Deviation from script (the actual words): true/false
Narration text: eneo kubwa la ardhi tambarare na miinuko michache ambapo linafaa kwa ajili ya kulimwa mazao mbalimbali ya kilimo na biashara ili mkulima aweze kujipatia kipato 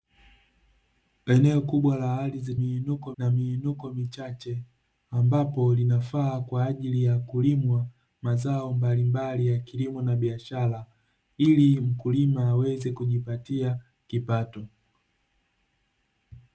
true